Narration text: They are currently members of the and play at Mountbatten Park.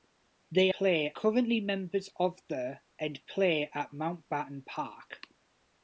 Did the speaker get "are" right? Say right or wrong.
wrong